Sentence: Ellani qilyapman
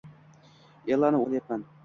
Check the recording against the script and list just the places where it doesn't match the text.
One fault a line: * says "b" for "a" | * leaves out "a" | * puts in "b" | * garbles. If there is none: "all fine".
all fine